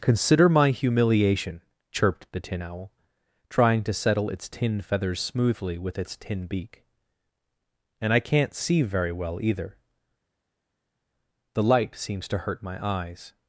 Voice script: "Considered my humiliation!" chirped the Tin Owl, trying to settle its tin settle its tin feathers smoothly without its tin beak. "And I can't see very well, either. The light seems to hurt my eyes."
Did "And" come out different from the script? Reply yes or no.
no